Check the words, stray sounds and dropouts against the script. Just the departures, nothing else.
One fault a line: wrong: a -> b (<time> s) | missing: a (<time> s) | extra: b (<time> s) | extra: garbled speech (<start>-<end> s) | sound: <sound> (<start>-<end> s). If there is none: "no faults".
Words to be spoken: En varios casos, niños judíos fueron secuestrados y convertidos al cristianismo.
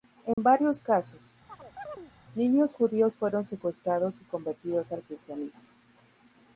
sound: dropout (0.3-0.4 s)
sound: chirp (1.5-2.1 s)